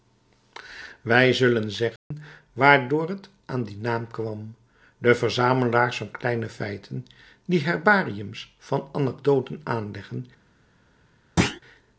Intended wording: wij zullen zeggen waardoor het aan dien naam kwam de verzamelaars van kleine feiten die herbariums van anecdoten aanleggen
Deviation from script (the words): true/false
false